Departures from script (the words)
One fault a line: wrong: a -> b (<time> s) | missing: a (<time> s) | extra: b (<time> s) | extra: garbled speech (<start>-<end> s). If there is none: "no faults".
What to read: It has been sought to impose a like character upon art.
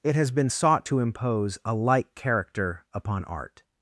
no faults